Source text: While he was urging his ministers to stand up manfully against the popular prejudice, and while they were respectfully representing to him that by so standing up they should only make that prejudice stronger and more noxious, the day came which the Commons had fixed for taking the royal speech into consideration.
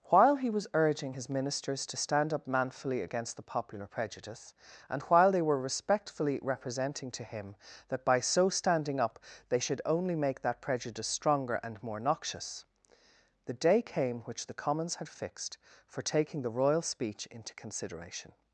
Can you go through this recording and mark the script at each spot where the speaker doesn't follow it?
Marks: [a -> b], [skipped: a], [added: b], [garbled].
While he was urging his ministers to stand up manfully against the popular prejudice, and while they were respectfully representing to him that by so standing up they should only make that prejudice stronger and more noxious, the day came which the Commons had fixed for taking the royal speech into consideration.